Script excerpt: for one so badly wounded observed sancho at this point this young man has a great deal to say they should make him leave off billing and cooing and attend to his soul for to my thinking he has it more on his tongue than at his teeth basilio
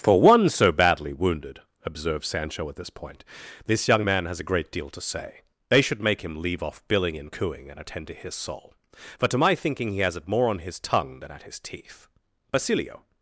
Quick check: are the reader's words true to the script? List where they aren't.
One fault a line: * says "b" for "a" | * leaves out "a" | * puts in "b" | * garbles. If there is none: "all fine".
all fine